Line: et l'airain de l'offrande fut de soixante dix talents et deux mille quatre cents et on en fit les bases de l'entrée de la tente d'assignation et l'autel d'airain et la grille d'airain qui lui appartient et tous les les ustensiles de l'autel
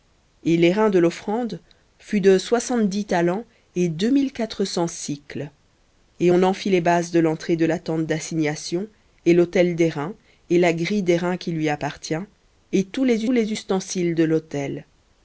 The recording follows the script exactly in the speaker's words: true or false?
true